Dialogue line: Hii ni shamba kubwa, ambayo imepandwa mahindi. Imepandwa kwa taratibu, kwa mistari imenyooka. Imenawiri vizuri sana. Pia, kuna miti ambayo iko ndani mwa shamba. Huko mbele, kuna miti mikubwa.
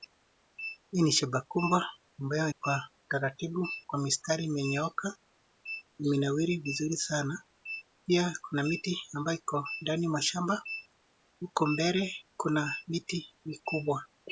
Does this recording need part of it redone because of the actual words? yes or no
yes